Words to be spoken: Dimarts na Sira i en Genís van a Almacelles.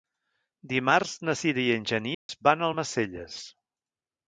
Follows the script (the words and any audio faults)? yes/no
no